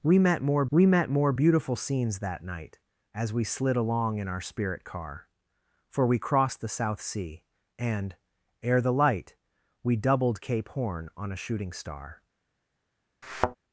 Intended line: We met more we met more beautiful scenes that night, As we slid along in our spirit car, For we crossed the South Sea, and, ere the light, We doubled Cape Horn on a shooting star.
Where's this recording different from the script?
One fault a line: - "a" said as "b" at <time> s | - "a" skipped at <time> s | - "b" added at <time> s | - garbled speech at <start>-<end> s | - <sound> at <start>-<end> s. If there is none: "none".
- thud at 13.2-13.6 s